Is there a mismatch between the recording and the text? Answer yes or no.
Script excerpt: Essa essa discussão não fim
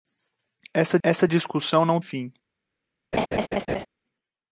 no